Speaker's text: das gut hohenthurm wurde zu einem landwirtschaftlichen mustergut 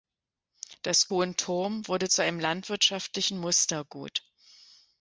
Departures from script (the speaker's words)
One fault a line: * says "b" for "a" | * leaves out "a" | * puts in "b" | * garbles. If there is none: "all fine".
* leaves out "gut"